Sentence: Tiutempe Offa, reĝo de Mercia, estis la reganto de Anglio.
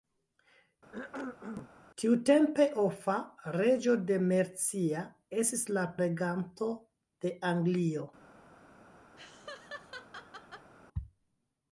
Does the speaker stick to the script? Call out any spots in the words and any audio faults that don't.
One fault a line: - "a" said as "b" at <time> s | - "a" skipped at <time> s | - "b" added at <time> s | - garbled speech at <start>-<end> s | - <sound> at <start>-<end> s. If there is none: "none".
- cough at 0.9-1.7 s
- laugh at 9.2-10.7 s